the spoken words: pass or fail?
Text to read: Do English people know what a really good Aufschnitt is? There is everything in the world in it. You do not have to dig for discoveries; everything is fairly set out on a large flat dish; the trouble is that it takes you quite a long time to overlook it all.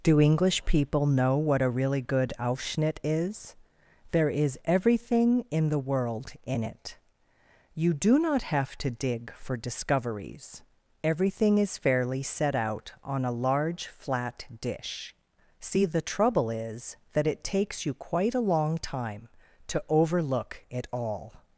fail